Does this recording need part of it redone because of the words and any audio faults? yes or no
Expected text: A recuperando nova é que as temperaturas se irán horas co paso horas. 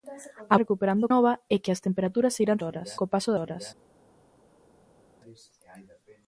no